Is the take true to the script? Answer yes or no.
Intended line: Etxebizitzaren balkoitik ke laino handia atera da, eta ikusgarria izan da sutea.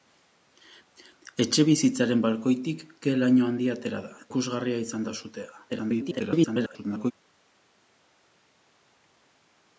no